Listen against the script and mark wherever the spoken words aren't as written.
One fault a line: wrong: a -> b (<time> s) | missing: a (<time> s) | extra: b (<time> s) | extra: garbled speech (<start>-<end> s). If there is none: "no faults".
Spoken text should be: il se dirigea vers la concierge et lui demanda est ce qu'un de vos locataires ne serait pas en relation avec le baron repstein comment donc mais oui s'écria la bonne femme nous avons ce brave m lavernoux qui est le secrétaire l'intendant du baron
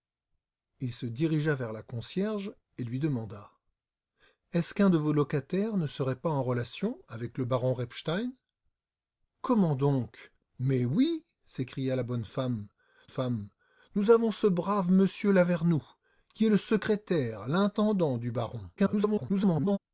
extra: femme (13.1 s)
extra: garbled speech (18.8-19.8 s)